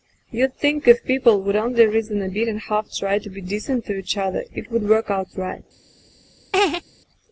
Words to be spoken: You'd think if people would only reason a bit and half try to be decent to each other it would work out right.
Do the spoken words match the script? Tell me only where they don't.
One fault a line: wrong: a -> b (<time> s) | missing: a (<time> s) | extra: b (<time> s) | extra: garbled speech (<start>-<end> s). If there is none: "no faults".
no faults